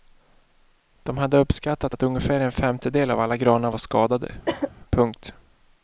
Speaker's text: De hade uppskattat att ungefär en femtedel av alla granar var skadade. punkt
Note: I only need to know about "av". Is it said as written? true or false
true